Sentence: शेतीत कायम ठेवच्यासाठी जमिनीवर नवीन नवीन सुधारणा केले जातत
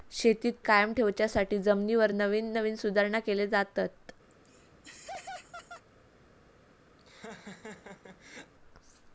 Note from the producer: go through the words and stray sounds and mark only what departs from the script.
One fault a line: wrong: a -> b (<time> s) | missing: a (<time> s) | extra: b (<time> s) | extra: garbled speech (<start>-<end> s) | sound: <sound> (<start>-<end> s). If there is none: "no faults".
sound: laugh (4.3-5.8 s)
sound: laugh (7.0-8.5 s)